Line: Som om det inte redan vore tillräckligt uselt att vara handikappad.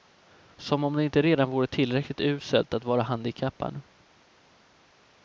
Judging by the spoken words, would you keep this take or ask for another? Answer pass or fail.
pass